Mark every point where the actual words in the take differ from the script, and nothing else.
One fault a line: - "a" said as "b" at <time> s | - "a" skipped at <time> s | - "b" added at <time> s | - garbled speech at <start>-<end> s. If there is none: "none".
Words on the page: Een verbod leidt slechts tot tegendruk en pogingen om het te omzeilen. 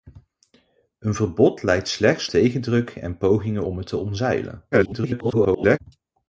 - "tot" skipped at 2.3 s
- garbled speech at 4.7-5.8 s